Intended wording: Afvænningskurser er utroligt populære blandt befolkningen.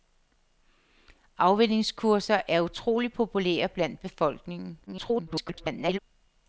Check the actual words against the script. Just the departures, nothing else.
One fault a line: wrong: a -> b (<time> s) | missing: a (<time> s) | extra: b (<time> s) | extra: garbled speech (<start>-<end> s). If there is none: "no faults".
extra: garbled speech (4.9-6.0 s)